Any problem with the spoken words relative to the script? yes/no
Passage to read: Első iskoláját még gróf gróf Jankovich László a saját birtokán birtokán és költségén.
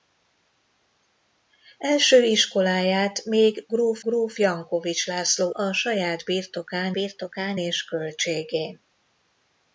no